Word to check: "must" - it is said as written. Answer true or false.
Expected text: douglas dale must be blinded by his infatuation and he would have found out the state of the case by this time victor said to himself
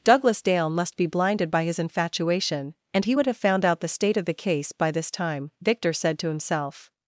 true